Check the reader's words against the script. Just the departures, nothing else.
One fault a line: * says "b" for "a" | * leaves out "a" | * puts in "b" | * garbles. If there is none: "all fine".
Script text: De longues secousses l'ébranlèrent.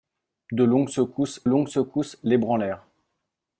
* puts in "longues secousses"